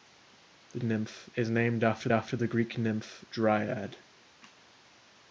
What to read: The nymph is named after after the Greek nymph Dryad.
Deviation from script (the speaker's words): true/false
false